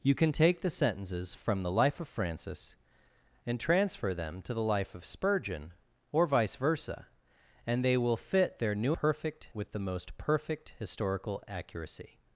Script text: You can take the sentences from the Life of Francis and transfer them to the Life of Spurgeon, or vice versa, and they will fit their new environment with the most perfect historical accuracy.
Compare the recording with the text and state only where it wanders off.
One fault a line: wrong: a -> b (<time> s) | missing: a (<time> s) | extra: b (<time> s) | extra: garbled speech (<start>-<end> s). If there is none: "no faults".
wrong: environment -> perfect (8.9 s)